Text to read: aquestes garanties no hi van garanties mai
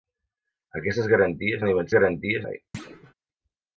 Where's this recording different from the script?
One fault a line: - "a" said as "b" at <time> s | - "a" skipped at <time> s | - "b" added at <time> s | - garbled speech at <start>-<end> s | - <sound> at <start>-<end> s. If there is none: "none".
- thud at 2.7-3.1 s